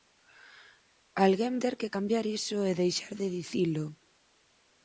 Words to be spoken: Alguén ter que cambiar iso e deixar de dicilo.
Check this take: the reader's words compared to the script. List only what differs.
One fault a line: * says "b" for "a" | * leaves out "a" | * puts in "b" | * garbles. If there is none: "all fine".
all fine